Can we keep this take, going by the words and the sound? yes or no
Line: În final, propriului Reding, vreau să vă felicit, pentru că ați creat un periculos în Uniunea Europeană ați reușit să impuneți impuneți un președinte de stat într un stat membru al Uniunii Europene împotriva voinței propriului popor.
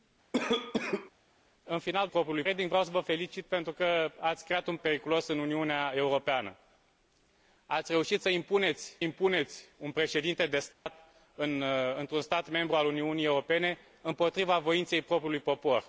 no